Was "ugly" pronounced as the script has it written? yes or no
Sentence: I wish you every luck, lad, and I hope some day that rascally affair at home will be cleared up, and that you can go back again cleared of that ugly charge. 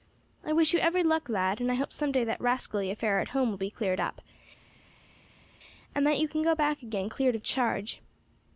no